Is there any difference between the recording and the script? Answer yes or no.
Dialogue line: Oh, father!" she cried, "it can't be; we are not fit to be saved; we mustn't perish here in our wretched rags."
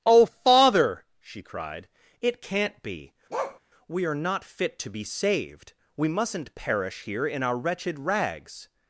no